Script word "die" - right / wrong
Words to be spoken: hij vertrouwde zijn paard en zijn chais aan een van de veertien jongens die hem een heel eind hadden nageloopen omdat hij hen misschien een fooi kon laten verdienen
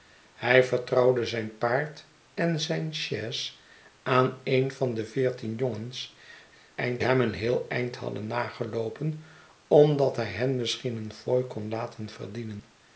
wrong